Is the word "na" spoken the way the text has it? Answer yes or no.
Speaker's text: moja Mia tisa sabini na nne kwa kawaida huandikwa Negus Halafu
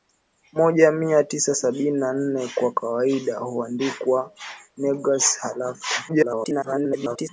yes